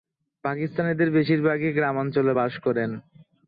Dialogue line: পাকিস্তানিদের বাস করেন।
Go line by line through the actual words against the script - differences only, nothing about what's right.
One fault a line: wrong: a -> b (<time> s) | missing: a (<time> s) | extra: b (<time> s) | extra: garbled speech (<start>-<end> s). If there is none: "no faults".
extra: বেশিরভাগই গ্রামাঞ্চলে (1.1 s)